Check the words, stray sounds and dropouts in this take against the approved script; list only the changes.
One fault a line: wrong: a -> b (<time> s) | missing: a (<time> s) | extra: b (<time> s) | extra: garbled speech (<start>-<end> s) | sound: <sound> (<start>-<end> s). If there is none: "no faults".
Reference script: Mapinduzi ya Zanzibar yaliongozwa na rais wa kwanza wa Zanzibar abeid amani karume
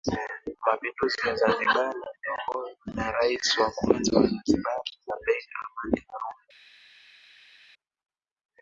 no faults